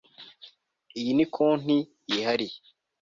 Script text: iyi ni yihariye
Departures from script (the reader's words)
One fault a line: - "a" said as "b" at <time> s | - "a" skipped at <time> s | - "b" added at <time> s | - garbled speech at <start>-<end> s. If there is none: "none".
- "konti" added at 1.4 s